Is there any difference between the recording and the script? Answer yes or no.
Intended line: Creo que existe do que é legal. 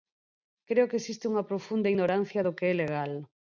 yes